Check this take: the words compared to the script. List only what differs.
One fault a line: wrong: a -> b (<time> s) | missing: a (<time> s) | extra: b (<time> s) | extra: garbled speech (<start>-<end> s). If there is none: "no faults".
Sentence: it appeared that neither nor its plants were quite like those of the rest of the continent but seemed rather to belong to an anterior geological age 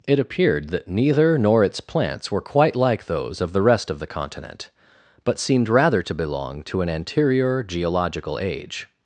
no faults